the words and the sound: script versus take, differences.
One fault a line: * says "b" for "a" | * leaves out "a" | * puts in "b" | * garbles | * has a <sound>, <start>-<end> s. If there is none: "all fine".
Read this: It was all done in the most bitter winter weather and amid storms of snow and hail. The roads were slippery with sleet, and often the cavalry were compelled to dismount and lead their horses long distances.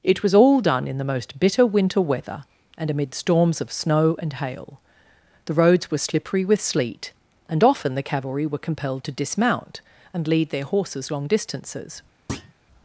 * has a thud, 12.3-12.5 s